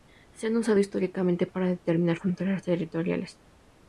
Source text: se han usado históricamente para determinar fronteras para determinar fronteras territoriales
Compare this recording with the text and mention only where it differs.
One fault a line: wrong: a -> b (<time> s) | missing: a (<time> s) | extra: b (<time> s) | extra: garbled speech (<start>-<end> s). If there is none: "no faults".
missing: para determinar fronteras (2.6 s)